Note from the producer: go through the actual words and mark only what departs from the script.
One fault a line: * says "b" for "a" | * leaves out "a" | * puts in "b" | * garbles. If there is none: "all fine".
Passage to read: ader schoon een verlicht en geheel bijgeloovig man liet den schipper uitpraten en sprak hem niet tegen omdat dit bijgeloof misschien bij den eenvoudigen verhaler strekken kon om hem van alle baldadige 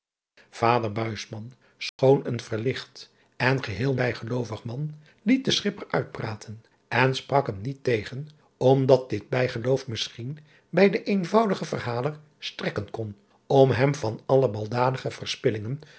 all fine